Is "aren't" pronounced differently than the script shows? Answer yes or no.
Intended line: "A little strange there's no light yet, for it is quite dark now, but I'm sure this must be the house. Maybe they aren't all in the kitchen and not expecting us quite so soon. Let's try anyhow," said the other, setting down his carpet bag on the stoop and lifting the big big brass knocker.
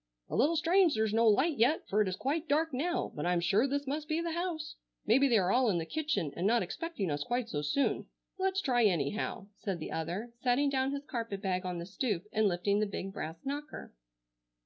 yes